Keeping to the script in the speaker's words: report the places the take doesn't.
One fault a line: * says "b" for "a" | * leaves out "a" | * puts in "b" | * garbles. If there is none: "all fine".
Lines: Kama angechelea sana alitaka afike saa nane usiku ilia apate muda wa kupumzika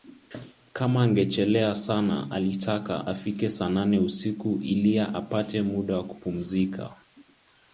all fine